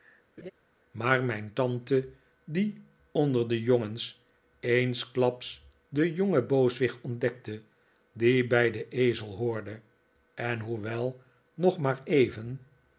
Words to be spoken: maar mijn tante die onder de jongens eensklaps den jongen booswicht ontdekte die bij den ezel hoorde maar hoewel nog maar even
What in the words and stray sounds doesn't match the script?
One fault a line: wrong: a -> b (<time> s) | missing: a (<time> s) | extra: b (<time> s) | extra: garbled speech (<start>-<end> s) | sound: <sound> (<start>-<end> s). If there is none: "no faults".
sound: laugh (0.4-0.5 s)
wrong: maar -> en (10.3 s)